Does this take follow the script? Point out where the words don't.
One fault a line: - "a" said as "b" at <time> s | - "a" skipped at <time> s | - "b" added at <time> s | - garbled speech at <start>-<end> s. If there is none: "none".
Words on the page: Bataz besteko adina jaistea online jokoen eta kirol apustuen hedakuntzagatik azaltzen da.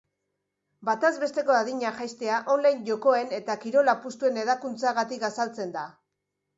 none